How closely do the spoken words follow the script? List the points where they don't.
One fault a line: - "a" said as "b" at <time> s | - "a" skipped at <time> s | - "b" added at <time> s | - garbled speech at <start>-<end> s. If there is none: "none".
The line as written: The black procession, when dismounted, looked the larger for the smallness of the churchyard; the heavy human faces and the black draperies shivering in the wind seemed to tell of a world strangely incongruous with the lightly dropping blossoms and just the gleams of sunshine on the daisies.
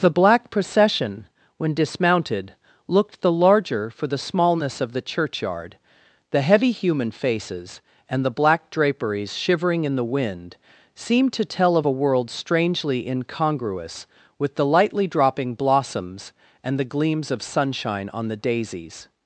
- "just" skipped at 16.8 s